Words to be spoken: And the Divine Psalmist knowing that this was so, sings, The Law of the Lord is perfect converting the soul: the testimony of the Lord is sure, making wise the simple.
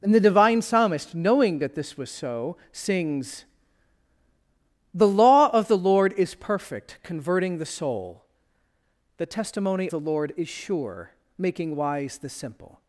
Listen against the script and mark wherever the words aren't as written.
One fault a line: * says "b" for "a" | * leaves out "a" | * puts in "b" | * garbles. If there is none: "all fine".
* leaves out "of"